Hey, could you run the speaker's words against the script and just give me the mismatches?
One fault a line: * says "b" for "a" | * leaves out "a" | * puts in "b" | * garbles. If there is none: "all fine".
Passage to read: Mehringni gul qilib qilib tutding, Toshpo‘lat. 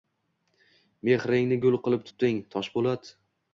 * leaves out "qilib"